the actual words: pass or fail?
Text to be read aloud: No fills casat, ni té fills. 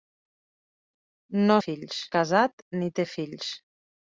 pass